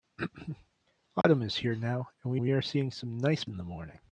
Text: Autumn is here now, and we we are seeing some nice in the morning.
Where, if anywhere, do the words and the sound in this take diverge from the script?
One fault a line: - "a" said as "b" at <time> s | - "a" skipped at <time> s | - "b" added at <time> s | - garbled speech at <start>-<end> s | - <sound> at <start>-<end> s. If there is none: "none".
- dropout at 1.2-1.2 s